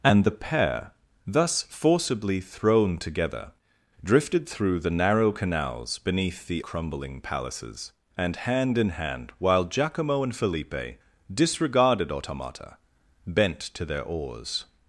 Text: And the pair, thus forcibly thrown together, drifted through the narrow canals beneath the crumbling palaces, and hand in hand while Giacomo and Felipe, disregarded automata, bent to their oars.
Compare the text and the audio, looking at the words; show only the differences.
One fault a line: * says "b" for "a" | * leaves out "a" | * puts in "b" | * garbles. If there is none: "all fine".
all fine